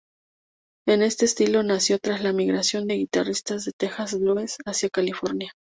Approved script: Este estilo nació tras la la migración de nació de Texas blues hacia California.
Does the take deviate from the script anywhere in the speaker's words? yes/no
yes